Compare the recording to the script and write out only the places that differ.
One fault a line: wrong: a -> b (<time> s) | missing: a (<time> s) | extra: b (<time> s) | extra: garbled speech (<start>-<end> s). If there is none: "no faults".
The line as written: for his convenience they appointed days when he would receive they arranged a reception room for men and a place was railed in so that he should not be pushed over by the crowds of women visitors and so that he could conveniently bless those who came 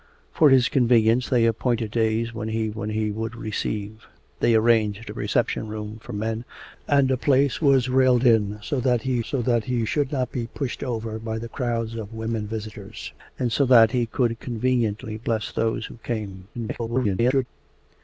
extra: when he (2.7 s)
extra: so that he (9.2 s)
extra: garbled speech (16.5-17.5 s)